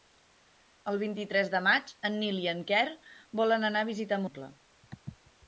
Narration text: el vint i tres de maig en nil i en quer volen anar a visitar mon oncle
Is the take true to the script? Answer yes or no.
no